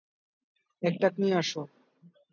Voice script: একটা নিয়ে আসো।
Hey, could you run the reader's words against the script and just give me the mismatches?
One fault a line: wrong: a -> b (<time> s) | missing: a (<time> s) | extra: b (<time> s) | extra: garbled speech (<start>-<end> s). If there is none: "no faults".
no faults